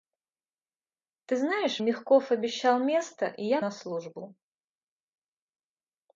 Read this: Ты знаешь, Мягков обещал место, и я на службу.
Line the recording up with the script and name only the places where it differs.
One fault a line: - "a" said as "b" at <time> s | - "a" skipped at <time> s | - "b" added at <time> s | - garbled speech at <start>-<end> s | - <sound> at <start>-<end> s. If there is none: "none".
none